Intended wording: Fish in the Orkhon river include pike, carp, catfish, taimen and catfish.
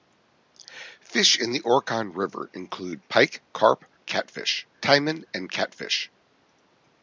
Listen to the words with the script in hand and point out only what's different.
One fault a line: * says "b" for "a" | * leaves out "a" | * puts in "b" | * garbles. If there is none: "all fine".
all fine